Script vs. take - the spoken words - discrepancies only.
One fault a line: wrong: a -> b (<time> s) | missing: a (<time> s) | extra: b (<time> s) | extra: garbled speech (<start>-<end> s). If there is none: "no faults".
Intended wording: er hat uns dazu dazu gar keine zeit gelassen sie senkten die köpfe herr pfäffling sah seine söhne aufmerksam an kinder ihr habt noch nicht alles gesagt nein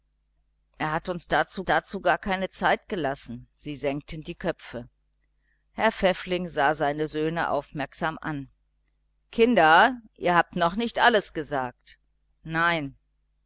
no faults